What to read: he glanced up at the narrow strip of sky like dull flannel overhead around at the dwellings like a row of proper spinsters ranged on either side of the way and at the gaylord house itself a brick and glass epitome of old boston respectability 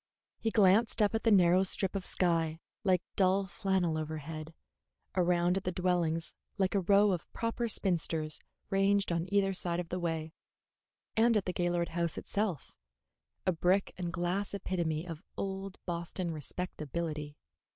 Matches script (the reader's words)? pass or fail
pass